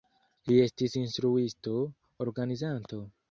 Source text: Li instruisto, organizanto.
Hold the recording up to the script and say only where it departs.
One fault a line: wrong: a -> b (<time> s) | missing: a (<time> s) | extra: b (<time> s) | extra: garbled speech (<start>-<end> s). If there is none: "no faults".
extra: estis (0.6 s)